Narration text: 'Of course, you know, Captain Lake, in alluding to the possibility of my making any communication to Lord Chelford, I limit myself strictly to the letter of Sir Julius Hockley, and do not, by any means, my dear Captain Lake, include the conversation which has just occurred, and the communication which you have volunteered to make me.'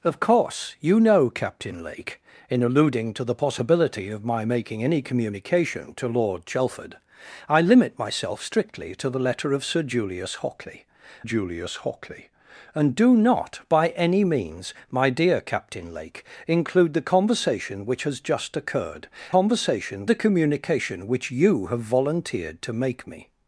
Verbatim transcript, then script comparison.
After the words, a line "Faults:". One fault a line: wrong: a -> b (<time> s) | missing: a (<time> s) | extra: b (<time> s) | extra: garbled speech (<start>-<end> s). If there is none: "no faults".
'Of course, you know, Captain Lake, in alluding to the possibility of my making any communication to Lord Chelford, I limit myself strictly to the letter of Sir Julius Hockley Julius Hockley, and do not, by any means, my dear Captain Lake, include the conversation which has just occurred, conversation the communication which you have volunteered to make me.'
Faults:
extra: Julius Hockley (11.2 s)
wrong: and -> conversation (19.3 s)